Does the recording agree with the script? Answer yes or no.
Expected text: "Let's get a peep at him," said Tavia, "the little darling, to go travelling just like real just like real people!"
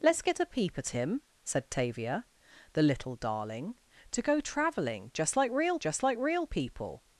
yes